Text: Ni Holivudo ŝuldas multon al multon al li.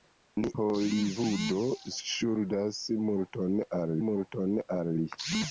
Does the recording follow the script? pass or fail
pass